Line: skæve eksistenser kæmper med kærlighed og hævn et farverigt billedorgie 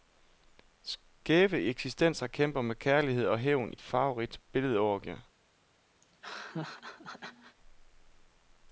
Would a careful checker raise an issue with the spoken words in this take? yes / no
no